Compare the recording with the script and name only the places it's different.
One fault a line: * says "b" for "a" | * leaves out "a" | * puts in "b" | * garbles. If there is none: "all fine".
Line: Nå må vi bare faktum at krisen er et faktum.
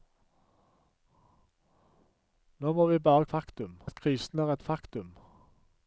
all fine